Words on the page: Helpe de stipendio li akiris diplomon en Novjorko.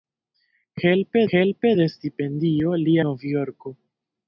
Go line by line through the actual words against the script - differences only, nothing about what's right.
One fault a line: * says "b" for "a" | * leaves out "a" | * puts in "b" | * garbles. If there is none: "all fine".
* puts in "helpe"
* leaves out "akiris diplomon en"